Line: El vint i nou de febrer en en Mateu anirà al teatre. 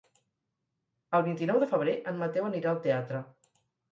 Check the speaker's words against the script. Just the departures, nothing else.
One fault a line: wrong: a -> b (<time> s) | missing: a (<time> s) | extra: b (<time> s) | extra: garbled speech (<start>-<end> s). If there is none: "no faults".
missing: en (2.2 s)